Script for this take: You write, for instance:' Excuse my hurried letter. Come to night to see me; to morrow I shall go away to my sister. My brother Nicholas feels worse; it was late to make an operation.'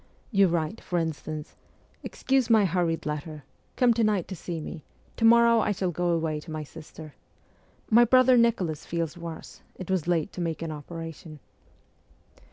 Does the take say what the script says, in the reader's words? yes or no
yes